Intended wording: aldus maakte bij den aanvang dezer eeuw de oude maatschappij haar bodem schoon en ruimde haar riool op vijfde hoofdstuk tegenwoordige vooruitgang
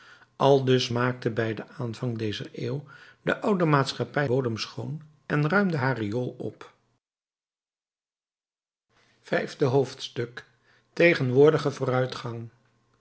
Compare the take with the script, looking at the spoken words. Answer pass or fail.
fail